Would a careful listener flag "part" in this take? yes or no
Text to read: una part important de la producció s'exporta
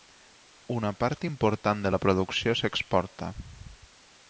no